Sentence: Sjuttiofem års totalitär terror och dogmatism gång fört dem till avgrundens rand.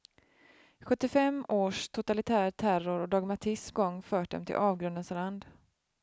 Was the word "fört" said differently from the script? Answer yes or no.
no